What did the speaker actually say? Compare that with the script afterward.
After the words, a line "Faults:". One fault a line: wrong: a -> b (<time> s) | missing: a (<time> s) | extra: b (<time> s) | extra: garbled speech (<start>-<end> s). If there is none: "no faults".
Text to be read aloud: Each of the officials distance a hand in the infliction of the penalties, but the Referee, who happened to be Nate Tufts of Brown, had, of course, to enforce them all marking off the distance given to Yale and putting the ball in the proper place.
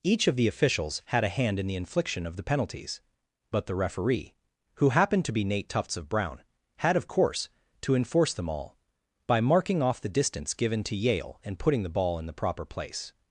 Each of the officials had a hand in the infliction of the penalties, but the Referee, who happened to be Nate Tufts of Brown, had, of course, to enforce them all by marking off the distance given to Yale and putting the ball in the proper place.
Faults:
wrong: distance -> had (1.1 s)
extra: by (9.3 s)